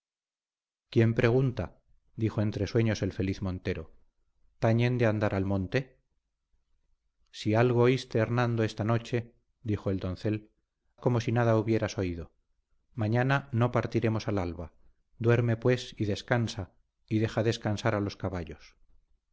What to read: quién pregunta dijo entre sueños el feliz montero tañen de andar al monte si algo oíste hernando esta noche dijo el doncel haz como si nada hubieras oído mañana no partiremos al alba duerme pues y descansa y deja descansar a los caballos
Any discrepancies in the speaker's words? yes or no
yes